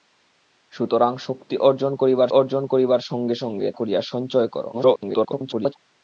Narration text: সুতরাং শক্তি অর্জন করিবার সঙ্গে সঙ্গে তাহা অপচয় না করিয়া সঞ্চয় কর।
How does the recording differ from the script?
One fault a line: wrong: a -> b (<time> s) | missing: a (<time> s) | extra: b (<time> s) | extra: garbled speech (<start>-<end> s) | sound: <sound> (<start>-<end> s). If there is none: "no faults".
extra: অর্জন করিবার (2.3 s)
missing: তাহা অপচয় না (3.7 s)
extra: garbled speech (4.7-5.8 s)